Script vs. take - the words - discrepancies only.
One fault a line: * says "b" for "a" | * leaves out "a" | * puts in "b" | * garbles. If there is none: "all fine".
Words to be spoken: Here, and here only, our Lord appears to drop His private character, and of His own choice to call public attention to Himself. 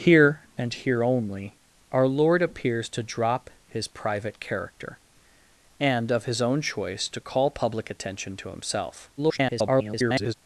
* garbles